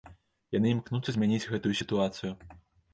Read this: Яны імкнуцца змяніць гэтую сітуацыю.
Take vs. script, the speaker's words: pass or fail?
pass